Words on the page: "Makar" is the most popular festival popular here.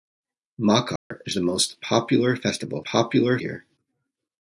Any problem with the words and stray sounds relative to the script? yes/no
yes